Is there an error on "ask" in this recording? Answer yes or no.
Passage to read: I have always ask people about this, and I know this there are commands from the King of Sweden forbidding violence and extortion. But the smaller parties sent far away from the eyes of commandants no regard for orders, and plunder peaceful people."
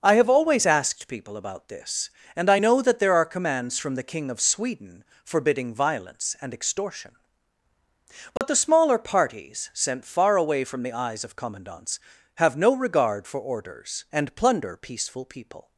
yes